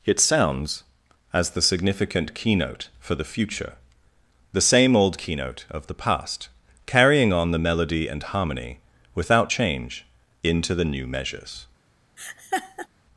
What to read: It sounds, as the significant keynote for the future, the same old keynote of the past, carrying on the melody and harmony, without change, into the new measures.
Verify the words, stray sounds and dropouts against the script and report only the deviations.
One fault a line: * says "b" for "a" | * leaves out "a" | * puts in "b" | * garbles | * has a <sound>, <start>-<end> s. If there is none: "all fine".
* has a laugh, 12.2-12.9 s